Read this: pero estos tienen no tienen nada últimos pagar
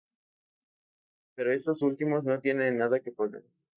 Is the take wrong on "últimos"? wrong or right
wrong